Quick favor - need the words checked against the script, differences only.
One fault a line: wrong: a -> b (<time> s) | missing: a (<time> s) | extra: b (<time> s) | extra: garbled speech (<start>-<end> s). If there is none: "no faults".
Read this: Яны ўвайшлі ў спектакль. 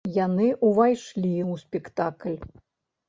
no faults